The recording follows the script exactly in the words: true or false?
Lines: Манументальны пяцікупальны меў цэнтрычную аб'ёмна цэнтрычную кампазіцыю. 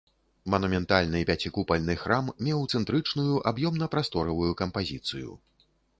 false